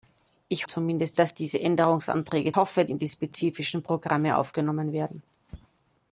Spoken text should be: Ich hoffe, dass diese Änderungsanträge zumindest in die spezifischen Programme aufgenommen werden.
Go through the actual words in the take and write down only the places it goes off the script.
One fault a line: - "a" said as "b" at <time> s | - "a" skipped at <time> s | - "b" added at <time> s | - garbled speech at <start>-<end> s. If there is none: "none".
- "hoffe" said as "zumindest" at 0.7 s
- "zumindest" said as "hoffe" at 2.5 s